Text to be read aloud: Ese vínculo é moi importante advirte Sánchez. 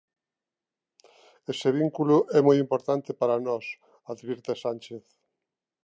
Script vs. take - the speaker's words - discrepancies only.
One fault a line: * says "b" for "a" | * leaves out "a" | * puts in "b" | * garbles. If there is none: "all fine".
* puts in "para nós"